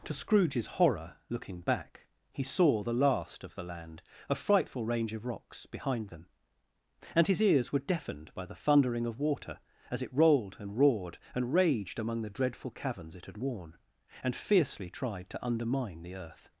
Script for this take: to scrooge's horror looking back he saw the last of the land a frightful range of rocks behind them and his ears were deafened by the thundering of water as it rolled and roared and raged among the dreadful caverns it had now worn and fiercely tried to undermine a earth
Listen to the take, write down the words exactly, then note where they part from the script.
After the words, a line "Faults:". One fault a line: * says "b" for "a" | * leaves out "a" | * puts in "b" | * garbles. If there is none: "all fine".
to scrooge's horror looking back he saw the last of the land a frightful range of rocks behind them and his ears were deafened by the thundering of water as it rolled and roared and raged among the dreadful caverns it had worn and fiercely tried to undermine the earth
Faults:
* leaves out "now"
* says "the" for "a"